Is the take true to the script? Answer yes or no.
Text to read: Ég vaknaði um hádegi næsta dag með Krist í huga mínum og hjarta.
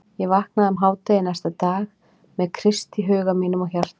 yes